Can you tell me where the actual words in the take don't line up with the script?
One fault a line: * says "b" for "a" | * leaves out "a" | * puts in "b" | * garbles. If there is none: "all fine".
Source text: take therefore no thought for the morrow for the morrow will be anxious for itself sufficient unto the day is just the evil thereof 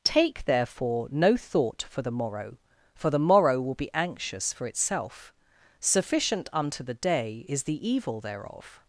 * leaves out "just"